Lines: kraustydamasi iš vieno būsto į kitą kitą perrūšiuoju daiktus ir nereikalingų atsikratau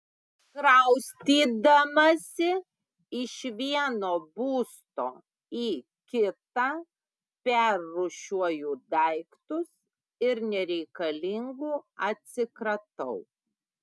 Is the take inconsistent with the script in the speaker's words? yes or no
yes